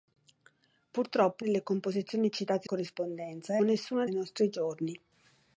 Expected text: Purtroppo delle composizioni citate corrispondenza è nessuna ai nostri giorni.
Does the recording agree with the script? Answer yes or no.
yes